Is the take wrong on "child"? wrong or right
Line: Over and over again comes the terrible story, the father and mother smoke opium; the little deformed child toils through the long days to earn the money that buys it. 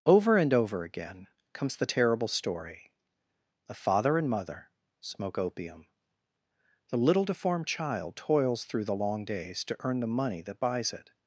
right